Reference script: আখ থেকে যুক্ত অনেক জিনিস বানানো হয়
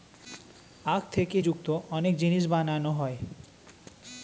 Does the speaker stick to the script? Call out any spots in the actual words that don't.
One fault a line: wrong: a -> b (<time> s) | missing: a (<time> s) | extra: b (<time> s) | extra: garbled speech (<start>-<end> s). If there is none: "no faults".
no faults